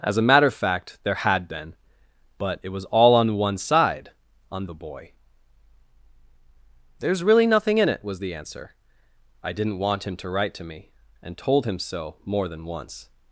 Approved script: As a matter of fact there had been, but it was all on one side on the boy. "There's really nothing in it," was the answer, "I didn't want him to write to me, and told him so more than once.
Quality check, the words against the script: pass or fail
pass